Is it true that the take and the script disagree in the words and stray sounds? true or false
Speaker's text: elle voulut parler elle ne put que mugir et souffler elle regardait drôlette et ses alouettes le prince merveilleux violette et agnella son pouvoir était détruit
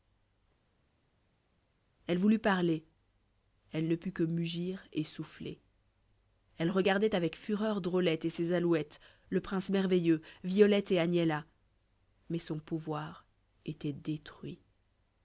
true